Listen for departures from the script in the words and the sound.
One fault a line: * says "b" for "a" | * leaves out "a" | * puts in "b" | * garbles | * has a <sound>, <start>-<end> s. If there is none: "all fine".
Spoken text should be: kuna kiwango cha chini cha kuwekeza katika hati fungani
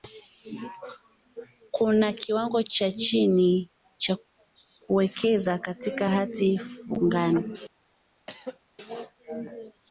* has a throat clearing, 8.3-8.6 s